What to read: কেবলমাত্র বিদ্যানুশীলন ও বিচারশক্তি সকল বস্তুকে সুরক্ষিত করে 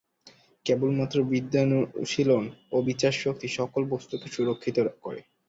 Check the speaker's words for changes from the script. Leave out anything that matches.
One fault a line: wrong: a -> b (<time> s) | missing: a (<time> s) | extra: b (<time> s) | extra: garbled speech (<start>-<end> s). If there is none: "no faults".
no faults